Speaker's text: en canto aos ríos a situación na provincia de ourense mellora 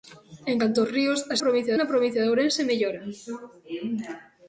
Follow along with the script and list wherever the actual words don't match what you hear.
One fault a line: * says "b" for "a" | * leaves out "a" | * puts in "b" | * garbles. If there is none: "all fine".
* says "provincia" for "situación"